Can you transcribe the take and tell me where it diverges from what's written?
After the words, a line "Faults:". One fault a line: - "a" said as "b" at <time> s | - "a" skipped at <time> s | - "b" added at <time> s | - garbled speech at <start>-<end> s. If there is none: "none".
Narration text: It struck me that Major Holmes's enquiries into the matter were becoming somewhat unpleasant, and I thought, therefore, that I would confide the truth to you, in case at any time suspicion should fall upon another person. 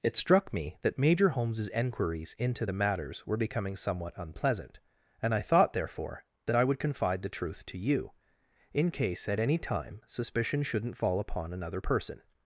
It struck me that Major Holmes's enquiries into the matters were becoming somewhat unpleasant, and I thought, therefore, that I would confide the truth to you, in case at any time suspicion shouldn't fall upon another person.
Faults:
- "matter" said as "matters" at 2.7 s
- "should" said as "shouldn't" at 10.6 s